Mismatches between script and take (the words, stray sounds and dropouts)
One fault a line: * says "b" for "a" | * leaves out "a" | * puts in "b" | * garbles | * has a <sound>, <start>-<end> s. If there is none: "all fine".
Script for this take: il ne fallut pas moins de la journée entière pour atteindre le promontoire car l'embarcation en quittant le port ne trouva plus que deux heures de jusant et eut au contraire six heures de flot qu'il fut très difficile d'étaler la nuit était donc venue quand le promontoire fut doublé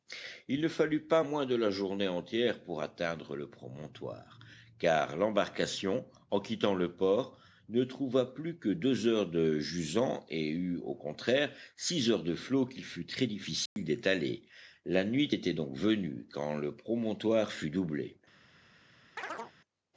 * has a dropout, 13.7-13.8 s
* has a chirp, 19.2-19.5 s